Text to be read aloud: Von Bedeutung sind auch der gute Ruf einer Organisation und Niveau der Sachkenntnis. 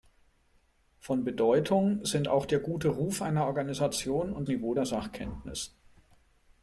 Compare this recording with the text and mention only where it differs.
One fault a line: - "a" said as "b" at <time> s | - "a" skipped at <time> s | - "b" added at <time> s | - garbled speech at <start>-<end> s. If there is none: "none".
none